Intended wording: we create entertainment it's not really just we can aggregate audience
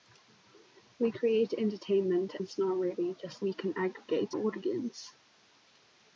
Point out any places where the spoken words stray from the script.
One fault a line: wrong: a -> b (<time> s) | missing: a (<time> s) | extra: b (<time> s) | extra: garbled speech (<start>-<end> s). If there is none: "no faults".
no faults